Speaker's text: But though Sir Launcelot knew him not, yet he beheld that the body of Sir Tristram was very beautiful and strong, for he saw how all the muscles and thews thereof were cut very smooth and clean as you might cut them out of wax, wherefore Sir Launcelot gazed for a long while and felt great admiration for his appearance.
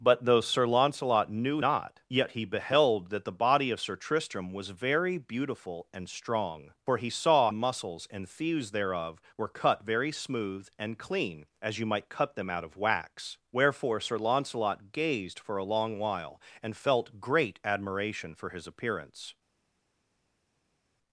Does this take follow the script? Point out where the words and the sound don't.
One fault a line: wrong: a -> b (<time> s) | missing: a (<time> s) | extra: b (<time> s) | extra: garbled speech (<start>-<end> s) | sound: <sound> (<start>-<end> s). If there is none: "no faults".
missing: him (1.6 s)
missing: how all the (7.5 s)